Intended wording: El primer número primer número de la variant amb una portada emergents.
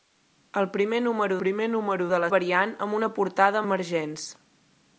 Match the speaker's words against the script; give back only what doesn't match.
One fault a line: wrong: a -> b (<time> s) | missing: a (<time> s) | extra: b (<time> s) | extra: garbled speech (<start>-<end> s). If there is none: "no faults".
no faults